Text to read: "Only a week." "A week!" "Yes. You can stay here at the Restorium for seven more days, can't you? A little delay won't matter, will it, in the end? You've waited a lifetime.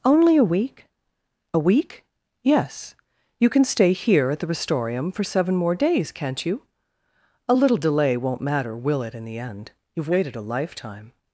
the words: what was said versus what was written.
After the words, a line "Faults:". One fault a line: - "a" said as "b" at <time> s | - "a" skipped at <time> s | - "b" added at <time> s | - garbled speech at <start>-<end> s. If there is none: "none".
"Only a week." "A week!" "Yes. You can stay here at the Restorium for seven more days, can't you? A little delay won't matter, will it, in the end? You've waited a lifetime.
Faults:
none